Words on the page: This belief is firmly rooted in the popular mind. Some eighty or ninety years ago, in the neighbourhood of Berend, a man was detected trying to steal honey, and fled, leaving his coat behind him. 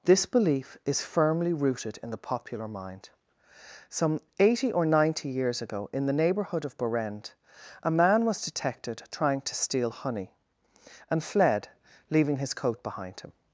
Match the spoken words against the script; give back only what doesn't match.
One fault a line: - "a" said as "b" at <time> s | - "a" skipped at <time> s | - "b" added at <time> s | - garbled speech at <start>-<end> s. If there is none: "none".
none